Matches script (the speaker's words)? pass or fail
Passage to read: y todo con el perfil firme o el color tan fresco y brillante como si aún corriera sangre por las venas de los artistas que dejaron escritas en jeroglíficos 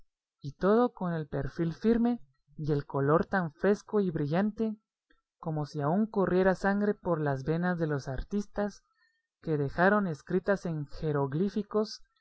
fail